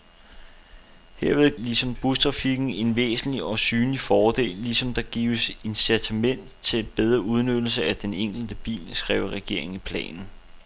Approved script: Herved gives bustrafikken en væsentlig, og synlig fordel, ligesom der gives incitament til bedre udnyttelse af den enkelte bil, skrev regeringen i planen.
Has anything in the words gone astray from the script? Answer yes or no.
yes